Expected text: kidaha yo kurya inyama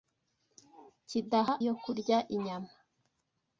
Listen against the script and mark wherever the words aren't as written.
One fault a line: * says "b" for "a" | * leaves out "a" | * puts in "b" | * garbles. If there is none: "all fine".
all fine